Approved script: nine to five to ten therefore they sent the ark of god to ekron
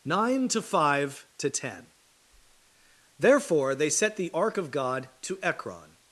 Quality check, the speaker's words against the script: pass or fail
fail